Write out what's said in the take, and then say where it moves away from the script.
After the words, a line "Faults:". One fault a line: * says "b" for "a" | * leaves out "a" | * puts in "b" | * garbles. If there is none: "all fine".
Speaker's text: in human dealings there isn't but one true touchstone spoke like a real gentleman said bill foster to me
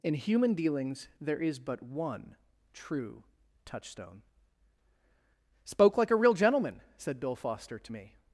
in human dealings there is but one true touchstone spoke like a real gentleman said bill foster to me
Faults:
* says "is" for "isn't"